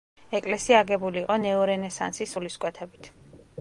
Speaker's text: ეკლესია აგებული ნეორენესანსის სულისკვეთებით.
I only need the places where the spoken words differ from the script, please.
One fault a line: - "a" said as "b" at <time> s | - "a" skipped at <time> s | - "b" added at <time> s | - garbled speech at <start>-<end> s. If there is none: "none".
- "იყო" added at 1.2 s